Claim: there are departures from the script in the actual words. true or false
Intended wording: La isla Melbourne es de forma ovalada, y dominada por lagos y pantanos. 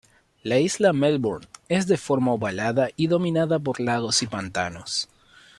false